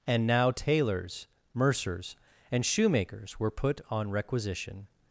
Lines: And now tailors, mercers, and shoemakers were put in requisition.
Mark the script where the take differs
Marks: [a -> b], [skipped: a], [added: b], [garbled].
And now tailors, mercers, and shoemakers were put [in -> on] requisition.